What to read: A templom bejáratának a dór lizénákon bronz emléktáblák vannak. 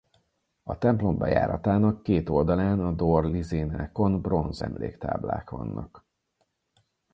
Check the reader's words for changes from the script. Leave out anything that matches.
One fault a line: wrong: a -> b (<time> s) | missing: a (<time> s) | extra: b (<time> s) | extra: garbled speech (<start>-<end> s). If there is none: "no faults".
extra: két oldalán (2.0 s)